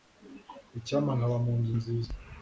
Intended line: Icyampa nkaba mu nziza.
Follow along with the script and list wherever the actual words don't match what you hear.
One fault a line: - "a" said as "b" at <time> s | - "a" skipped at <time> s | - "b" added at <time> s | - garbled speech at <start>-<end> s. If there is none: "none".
- "nzu" added at 1.6 s